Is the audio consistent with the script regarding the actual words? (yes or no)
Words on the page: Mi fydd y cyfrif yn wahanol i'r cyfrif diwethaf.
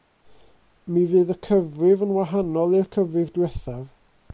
yes